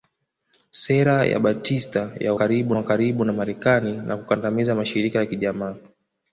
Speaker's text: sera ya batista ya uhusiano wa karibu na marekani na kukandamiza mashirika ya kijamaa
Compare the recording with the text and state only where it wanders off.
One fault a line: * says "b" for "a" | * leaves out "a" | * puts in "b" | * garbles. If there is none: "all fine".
* says "karibu" for "uhusiano"